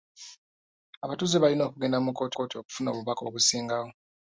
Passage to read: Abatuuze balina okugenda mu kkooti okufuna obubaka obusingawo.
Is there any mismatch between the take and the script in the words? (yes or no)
yes